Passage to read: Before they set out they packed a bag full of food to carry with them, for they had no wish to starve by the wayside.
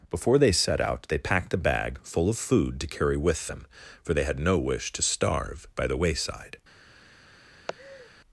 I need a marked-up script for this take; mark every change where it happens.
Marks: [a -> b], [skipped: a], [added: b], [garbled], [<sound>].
Before they set out they packed a bag full of food to carry with them, for they had no wish to starve by the wayside. [laugh]